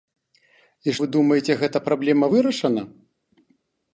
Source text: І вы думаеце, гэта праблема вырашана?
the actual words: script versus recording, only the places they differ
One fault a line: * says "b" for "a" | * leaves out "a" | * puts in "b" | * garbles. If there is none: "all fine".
all fine